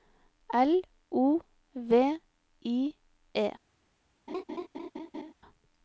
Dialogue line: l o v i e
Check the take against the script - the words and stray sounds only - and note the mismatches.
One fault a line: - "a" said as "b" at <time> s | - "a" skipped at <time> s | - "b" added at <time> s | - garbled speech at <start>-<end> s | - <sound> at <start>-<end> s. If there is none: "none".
- laugh at 4.3-5.3 s